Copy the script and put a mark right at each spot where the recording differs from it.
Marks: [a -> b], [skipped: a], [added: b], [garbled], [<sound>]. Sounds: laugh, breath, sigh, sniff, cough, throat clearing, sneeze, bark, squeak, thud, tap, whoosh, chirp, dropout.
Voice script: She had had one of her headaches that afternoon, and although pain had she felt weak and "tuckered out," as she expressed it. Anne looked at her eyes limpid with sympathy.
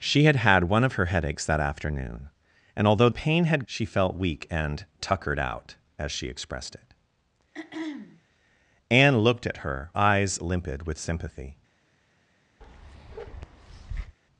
She had had one of her headaches that afternoon, and although pain had she felt weak and "tuckered out," as she expressed it. [throat clearing] Anne looked at her eyes limpid with sympathy. [bark]